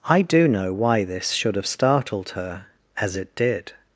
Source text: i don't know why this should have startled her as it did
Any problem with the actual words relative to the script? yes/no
yes